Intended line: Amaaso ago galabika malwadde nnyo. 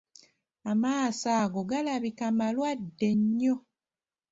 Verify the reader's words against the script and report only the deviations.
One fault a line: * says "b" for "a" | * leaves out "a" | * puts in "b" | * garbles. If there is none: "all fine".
all fine